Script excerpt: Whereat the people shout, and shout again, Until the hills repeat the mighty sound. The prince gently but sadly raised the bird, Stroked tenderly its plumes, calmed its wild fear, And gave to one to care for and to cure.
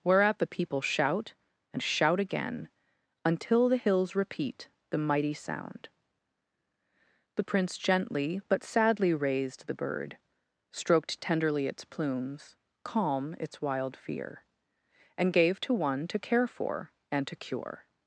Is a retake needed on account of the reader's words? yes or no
yes